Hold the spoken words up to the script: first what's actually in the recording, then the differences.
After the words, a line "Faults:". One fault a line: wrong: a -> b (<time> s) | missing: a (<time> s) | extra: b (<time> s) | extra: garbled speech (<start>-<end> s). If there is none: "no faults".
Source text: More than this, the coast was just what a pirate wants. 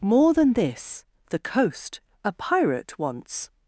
More than this, the coast a pirate wants.
Faults:
missing: was just what (2.0 s)